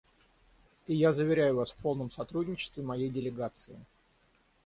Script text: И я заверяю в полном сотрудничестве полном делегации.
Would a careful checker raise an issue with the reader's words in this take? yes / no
yes